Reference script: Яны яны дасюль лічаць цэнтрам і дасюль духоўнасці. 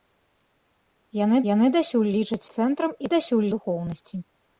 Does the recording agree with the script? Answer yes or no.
yes